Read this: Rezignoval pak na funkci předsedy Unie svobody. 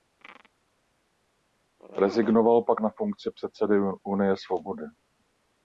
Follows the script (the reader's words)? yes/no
yes